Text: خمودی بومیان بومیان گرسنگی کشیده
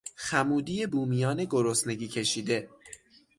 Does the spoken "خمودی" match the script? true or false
true